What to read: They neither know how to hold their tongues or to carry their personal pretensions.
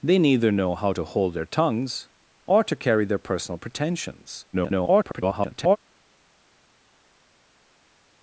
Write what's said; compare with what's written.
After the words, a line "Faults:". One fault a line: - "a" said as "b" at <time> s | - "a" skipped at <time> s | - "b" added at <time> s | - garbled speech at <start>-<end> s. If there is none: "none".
They neither know how to hold their tongues or to carry their personal pretensions. [garbled]
Faults:
- garbled speech at 4.5-5.8 s